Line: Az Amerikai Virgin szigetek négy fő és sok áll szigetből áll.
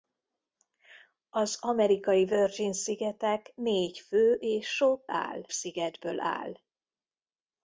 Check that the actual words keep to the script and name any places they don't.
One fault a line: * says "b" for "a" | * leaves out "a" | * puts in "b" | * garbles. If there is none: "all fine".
all fine